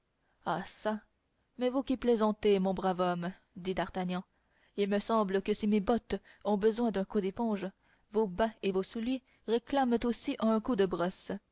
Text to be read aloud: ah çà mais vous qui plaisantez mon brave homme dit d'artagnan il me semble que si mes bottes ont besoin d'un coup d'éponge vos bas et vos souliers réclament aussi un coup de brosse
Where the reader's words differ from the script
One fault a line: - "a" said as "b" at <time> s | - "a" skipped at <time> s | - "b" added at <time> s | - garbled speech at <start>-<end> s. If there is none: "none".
none